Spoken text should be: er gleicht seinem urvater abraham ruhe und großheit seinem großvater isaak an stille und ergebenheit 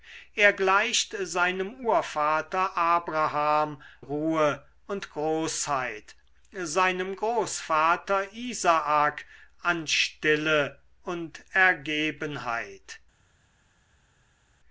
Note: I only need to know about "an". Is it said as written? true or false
true